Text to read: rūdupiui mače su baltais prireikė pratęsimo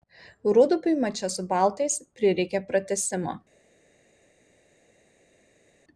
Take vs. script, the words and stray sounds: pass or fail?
pass